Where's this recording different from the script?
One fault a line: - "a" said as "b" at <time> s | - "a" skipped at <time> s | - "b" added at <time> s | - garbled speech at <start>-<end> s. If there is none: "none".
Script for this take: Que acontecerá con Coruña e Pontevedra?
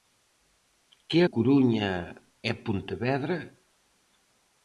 - "acontecerá con" skipped at 1.2 s